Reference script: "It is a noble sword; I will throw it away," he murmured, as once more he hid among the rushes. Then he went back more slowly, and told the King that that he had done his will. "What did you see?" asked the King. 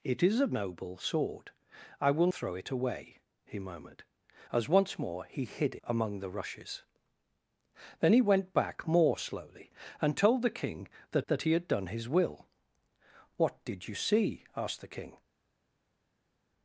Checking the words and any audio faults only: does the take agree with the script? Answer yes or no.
yes